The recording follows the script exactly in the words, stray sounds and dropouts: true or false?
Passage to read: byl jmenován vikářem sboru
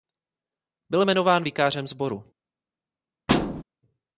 false